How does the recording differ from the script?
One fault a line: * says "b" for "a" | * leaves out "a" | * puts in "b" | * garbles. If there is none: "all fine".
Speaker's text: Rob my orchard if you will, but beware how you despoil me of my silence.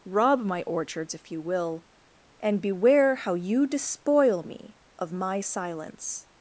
* says "orchards" for "orchard"
* says "and" for "but"